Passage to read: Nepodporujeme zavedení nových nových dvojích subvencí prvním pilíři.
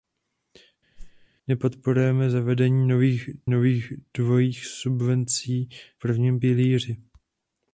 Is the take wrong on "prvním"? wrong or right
right